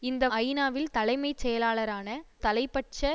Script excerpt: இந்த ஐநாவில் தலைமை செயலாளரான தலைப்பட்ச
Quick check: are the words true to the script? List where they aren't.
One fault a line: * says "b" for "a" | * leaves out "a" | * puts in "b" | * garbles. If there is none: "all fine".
all fine